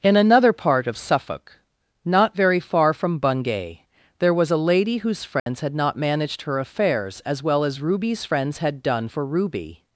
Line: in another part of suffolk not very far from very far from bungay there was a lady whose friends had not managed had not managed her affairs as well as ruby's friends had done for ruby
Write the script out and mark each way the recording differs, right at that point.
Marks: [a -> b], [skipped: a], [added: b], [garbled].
in another part of suffolk not very far from [skipped: very far from] bungay there was a lady whose friends had not managed [skipped: had not managed] her affairs as well as ruby's friends had done for ruby